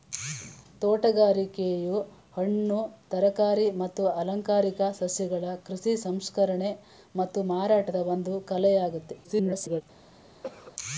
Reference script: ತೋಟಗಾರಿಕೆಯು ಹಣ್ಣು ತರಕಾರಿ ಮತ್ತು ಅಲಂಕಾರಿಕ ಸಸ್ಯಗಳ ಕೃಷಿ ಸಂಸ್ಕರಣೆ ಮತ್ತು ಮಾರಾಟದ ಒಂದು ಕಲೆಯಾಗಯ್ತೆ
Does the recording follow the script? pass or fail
fail